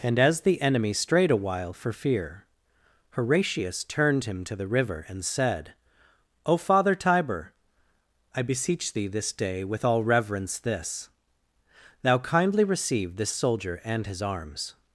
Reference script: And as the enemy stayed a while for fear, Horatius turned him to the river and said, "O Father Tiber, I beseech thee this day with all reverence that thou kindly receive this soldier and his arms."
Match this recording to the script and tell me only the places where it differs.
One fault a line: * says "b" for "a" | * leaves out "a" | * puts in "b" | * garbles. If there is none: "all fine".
* says "strayed" for "stayed"
* says "this" for "that"